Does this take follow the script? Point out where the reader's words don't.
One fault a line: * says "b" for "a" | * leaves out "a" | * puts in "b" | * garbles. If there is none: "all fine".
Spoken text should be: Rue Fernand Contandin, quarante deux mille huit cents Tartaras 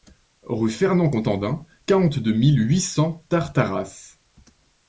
all fine